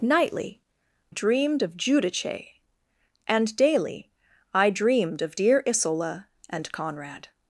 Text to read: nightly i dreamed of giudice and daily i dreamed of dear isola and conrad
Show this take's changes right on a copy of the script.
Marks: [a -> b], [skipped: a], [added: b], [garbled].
nightly [skipped: i] dreamed of giudice and daily i dreamed of dear isola and conrad